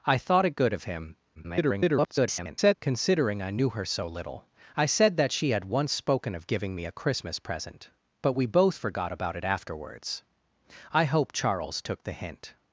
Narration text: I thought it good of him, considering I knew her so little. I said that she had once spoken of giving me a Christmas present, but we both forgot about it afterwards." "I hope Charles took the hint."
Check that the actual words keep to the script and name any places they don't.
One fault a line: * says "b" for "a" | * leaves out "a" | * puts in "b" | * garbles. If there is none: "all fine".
* garbles